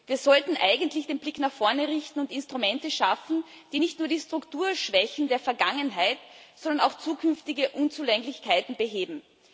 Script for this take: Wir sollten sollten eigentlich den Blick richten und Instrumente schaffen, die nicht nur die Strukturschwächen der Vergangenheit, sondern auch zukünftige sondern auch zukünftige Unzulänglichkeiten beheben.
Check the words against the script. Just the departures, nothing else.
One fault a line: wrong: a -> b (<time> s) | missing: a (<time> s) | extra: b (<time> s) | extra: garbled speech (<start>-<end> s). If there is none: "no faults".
missing: sollten (0.6 s)
extra: nach vorne (1.4 s)
missing: sondern auch zukünftige (7.7 s)